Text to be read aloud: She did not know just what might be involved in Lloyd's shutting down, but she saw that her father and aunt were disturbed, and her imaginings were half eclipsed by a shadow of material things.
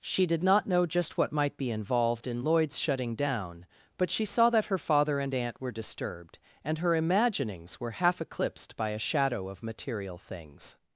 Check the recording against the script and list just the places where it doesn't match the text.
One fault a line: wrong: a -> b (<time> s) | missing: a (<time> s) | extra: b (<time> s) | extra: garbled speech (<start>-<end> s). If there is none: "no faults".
no faults